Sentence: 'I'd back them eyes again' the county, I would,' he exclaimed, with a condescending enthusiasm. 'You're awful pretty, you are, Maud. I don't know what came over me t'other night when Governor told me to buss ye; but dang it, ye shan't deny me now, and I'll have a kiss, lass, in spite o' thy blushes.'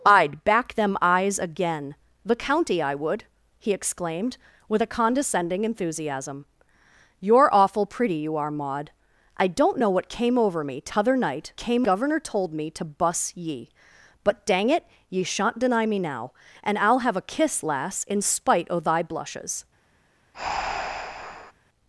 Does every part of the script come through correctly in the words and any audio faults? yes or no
no